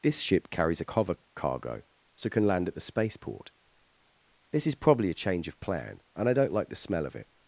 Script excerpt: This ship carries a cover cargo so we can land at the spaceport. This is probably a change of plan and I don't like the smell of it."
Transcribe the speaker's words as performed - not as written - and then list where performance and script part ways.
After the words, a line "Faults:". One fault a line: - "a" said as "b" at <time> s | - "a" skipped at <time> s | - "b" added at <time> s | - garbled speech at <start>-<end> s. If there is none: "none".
This ship carries a cover cargo so can land at the spaceport. This is probably a change of plan and I don't like the smell of it."
Faults:
- "we" skipped at 2.3 s